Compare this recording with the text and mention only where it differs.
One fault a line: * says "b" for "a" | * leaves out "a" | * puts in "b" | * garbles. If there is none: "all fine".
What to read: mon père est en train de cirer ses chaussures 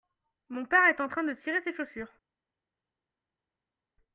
all fine